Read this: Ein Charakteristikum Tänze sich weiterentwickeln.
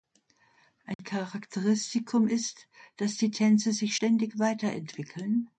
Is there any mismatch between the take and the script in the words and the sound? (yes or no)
yes